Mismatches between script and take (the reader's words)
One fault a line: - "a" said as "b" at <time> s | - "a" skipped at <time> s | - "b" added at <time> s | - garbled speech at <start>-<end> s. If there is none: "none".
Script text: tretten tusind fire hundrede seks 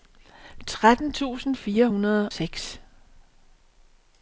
none